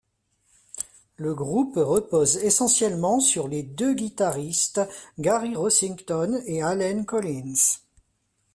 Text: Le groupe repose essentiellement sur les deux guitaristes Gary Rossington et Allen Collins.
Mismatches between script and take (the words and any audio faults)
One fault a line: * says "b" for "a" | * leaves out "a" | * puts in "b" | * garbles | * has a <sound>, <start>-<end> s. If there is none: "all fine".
all fine